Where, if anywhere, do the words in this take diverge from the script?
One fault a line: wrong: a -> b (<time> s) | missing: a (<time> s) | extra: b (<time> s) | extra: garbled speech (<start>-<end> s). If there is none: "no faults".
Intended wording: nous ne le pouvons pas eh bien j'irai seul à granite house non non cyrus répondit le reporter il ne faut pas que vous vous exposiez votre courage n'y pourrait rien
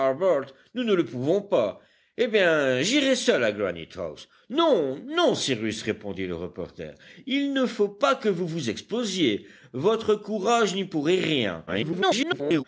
extra: garbled speech (11.7-12.6 s)